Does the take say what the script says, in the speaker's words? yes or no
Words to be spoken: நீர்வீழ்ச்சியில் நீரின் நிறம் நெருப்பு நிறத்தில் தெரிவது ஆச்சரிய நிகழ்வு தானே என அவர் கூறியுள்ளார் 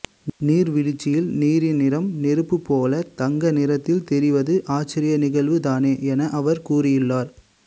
no